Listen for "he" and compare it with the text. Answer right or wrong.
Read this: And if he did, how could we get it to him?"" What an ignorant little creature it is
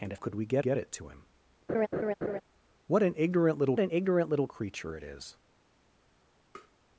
wrong